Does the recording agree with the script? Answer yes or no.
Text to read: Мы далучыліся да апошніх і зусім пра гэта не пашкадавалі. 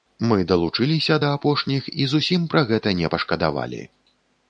yes